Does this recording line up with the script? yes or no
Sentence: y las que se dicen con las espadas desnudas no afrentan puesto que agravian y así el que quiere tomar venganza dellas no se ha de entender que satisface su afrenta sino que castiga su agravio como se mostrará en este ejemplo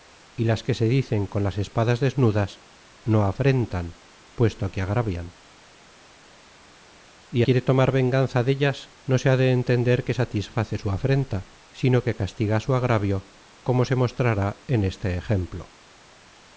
no